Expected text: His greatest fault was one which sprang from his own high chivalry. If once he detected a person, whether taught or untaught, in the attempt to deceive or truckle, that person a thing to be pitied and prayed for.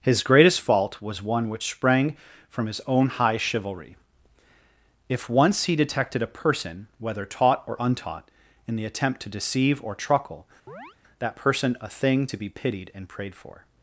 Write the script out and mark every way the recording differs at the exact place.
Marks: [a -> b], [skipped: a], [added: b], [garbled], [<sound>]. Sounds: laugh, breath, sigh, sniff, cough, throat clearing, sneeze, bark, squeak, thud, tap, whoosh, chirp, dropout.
His greatest fault was one which sprang from his own high chivalry. If once he detected a person, whether taught or untaught, in the attempt to deceive or truckle, [chirp] that person a thing to be pitied and prayed for.